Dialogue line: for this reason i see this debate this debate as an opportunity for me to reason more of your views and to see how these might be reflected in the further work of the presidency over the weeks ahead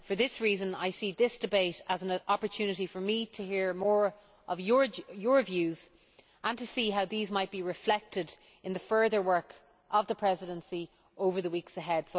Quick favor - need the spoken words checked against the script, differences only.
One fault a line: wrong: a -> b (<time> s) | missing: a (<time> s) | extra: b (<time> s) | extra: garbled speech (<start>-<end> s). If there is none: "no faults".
missing: this debate (1.8 s)
wrong: reason -> hear (3.5 s)